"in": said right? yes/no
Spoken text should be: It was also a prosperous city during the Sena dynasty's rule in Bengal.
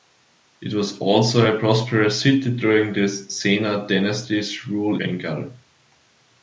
no